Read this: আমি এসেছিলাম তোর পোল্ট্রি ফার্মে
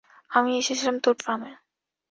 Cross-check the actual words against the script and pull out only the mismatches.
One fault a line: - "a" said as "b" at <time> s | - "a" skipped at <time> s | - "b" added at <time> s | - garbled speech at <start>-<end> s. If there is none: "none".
- "পোল্ট্রি" skipped at 1.1 s